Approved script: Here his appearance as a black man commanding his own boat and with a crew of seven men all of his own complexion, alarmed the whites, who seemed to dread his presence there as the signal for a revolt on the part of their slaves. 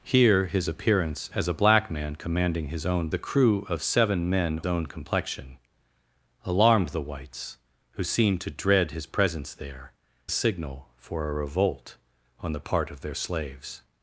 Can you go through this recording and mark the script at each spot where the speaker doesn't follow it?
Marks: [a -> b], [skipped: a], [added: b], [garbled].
Here his appearance as a black man commanding his own [skipped: boat and with] a crew of seven men [skipped: all of his] own complexion, alarmed the whites, who seemed to dread his presence there [skipped: as the] signal for a revolt on the part of their slaves.